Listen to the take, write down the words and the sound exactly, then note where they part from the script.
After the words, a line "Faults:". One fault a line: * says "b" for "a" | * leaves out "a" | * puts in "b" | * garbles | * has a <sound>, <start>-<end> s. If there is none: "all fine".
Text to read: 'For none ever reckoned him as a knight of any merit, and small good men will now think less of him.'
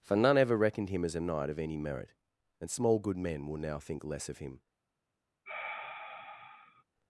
'For none ever reckoned him as a knight of any merit, and small good men will now think less of him.'
Faults:
* has a sigh, 5.5-6.8 s